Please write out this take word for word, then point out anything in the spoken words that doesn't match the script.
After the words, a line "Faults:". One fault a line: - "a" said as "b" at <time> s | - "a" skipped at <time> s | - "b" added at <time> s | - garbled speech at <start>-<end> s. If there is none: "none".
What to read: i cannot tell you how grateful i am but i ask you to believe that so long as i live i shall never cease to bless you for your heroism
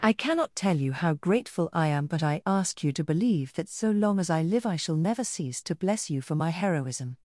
i cannot tell you how grateful i am but i ask you to believe that so long as i live i shall never cease to bless you for my heroism
Faults:
- "your" said as "my" at 6.3 s